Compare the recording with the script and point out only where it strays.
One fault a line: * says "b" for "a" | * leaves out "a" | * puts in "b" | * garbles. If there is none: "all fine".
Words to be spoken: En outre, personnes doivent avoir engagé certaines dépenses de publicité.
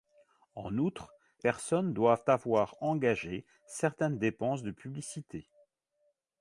all fine